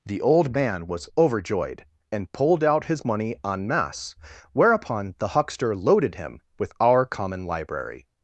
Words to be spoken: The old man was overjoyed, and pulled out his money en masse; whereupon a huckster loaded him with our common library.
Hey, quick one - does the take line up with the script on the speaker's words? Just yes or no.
no